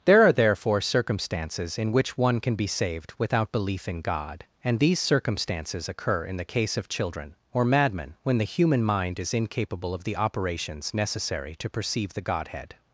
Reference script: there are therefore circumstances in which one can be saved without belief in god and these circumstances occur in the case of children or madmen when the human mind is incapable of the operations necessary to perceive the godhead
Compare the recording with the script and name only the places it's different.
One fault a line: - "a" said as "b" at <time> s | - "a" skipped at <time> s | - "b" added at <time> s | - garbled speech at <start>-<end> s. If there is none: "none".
none